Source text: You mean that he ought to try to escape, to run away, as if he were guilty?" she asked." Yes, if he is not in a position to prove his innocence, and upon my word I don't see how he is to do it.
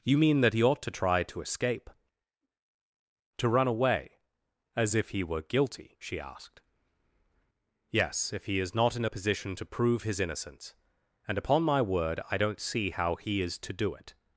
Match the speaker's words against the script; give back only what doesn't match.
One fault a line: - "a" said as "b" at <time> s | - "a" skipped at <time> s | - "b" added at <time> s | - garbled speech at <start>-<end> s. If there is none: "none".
none